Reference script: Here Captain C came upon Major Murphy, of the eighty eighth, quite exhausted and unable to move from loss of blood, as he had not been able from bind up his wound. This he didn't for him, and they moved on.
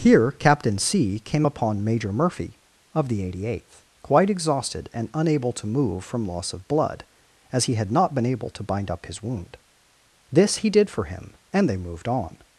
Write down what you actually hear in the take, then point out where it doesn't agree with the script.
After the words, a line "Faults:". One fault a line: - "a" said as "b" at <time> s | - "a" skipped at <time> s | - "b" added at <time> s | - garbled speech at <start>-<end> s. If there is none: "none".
Here Captain C came upon Major Murphy, of the eighty eighth, quite exhausted and unable to move from loss of blood, as he had not been able to bind up his wound. This he did for him, and they moved on.
Faults:
- "from" said as "to" at 8.5 s
- "didn't" said as "did" at 10.7 s